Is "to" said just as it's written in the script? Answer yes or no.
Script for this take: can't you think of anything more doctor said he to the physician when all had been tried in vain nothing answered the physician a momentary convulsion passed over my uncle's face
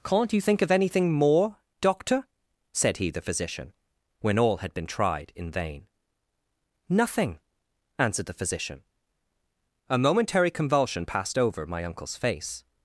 no